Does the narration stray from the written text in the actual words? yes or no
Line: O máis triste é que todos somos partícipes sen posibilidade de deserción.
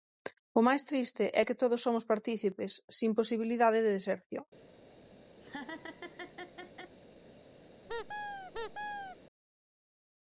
no